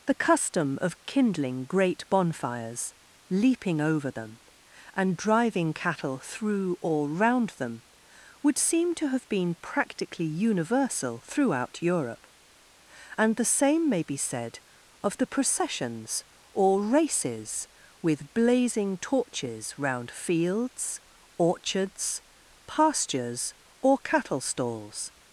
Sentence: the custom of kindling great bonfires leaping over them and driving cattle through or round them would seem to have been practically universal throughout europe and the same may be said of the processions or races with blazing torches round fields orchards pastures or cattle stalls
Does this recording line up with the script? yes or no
yes